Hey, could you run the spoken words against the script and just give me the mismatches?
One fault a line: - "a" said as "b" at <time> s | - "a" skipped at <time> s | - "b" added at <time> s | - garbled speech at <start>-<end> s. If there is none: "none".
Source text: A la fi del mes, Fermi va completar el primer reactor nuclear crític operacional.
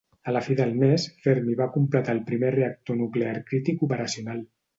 none